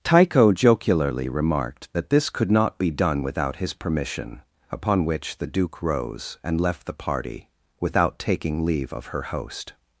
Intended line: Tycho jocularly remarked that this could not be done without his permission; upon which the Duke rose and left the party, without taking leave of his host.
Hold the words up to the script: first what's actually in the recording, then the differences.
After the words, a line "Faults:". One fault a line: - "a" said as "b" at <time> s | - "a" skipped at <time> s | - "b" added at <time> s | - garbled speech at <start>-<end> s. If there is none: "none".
Tycho jocularly remarked that this could not be done without his permission; upon which the Duke rose and left the party, without taking leave of her host.
Faults:
- "his" said as "her" at 9.1 s